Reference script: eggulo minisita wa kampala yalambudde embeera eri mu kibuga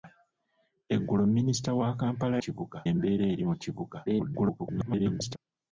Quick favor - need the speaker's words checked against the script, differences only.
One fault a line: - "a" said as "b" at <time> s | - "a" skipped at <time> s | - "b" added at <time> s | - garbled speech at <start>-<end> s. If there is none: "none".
- "yalambudde" said as "kibuga" at 2.4 s
- garbled speech at 4.1-5.4 s